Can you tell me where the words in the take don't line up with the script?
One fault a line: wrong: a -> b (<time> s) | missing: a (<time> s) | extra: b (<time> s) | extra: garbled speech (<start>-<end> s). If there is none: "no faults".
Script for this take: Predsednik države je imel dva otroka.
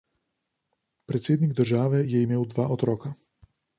no faults